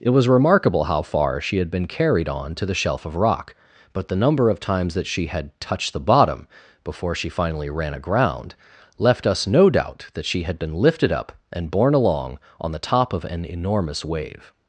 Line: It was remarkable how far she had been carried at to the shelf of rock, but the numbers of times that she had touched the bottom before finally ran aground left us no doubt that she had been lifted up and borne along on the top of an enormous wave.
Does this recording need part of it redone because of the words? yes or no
yes